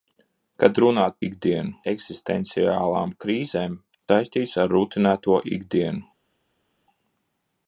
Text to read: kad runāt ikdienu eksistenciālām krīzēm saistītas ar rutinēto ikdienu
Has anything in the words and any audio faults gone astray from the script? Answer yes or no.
no